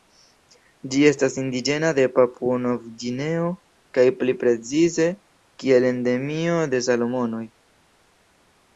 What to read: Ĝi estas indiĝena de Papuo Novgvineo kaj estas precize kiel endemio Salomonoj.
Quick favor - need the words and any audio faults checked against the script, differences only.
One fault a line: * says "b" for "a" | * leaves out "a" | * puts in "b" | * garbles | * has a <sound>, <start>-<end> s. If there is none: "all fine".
* says "pli" for "estas"
* puts in "de"